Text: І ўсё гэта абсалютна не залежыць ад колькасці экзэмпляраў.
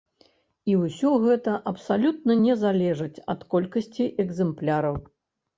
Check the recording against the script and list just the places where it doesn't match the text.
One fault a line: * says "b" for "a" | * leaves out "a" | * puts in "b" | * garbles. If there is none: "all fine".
all fine